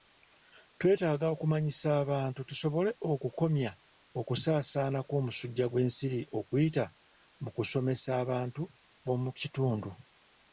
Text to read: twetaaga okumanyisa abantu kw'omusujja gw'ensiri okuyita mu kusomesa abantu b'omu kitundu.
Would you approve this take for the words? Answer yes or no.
no